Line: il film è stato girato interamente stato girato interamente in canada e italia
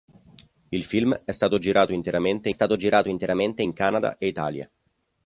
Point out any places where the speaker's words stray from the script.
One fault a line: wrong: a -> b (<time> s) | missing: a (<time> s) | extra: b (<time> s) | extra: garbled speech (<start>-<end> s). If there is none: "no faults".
no faults